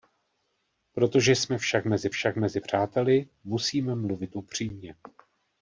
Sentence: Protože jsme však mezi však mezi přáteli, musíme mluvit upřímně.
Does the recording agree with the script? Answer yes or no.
yes